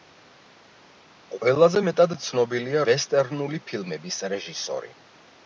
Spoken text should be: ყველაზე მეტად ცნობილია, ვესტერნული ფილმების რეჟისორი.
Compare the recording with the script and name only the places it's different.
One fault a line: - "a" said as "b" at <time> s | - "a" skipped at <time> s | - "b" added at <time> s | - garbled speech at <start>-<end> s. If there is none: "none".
none